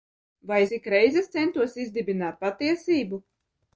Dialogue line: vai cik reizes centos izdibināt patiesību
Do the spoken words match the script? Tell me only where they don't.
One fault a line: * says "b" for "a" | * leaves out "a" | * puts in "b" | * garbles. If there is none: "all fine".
all fine